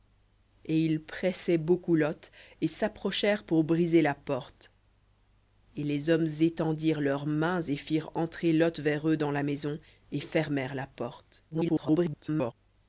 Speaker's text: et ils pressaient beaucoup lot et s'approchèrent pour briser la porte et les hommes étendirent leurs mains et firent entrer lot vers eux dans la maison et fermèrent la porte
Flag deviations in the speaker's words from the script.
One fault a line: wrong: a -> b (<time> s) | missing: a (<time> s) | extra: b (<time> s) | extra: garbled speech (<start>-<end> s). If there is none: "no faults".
extra: garbled speech (11.5-12.5 s)